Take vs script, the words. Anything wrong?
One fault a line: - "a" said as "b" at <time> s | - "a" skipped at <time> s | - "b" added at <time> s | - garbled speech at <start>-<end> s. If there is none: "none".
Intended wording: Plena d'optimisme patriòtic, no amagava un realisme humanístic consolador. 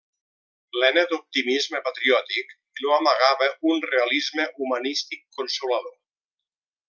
none